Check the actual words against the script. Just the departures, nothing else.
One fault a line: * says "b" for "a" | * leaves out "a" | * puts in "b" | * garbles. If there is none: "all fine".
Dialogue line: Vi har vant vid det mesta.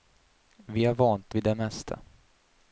all fine